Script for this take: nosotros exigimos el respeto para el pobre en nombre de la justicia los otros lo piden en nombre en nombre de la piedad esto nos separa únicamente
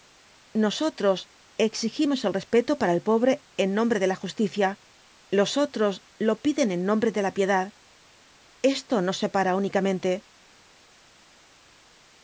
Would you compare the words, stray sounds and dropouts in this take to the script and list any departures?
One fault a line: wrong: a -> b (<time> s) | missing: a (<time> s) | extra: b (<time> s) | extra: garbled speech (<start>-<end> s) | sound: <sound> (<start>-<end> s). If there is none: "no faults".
missing: en nombre (7.1 s)